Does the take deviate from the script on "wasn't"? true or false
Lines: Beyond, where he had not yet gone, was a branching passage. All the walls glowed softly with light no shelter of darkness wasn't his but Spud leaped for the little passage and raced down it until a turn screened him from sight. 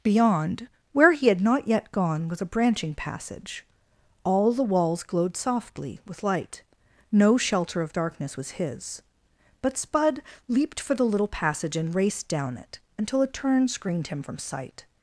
true